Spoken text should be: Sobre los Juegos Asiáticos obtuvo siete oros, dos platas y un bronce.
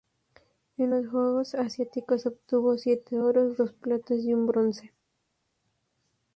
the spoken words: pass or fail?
fail